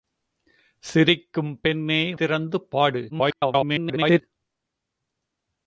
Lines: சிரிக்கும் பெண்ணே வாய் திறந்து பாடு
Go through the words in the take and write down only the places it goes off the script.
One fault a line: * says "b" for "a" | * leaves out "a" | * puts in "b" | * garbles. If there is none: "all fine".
* leaves out "வாய்"
* garbles